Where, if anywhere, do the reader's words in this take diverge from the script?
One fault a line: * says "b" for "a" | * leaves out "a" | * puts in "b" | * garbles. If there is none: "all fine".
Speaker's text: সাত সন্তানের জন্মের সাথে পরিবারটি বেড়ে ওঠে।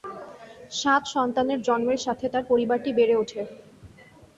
* puts in "তার"